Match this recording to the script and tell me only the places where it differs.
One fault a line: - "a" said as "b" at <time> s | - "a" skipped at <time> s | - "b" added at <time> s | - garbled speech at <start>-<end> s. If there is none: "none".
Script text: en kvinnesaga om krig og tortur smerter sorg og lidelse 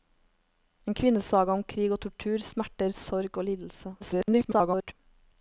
- garbled speech at 4.0-4.9 s